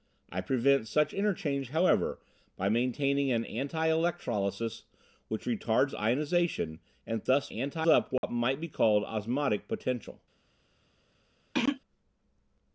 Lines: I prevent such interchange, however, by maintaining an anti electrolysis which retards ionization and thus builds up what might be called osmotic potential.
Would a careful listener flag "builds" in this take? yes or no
yes